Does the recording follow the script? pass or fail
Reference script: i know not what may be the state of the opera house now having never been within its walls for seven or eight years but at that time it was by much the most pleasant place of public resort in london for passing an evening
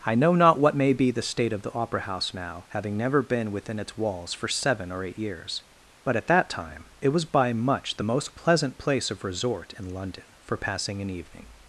fail